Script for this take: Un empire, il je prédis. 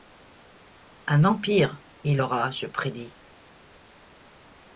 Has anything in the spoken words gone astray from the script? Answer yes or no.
yes